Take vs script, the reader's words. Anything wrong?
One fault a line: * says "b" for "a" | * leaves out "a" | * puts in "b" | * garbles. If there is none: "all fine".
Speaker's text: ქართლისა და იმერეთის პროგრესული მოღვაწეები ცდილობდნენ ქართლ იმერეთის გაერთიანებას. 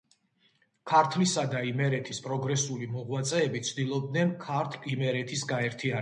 all fine